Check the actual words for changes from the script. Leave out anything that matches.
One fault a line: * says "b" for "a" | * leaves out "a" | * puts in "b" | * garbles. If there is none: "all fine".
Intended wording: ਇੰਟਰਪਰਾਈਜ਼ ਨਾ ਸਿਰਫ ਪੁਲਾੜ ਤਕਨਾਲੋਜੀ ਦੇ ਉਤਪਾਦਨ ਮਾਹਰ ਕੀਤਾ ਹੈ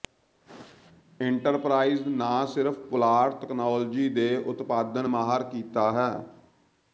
all fine